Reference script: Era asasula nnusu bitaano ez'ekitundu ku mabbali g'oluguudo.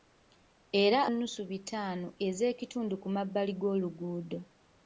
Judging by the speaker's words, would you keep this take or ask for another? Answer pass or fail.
fail